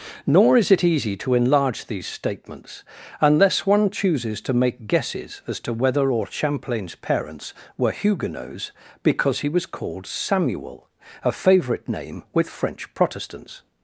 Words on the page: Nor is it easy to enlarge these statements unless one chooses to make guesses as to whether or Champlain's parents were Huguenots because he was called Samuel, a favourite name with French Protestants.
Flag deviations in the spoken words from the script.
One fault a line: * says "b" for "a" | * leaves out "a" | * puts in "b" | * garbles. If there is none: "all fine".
all fine